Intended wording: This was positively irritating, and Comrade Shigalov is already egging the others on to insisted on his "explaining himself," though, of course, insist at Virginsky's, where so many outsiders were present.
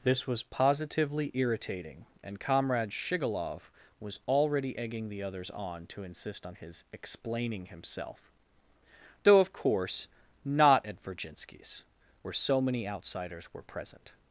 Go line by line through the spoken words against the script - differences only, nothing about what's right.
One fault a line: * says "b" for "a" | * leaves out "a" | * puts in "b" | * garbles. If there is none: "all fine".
* says "was" for "is"
* says "insist" for "insisted"
* says "not" for "insist"